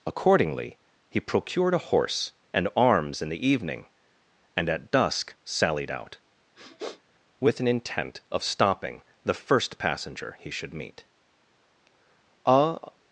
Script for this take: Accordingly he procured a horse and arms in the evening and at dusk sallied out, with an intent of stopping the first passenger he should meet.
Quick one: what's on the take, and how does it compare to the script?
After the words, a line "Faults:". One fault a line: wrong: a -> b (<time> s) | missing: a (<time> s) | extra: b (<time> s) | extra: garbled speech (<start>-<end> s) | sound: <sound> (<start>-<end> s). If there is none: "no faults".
Accordingly he procured a horse and arms in the evening and at dusk sallied out, with an intent of stopping the first passenger he should meet. A
Faults:
sound: sniff (6.6-7.0 s)
extra: A (12.5 s)